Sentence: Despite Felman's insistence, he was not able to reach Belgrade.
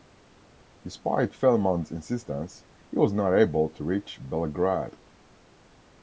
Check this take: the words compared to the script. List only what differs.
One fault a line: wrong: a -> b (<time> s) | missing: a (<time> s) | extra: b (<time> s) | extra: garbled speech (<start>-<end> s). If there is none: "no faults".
no faults